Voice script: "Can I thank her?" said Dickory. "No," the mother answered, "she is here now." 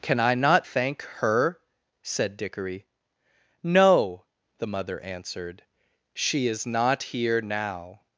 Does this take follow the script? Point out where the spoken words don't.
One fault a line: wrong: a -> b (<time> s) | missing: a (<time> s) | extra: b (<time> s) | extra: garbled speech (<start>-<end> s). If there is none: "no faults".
extra: not (0.3 s)
extra: not (6.6 s)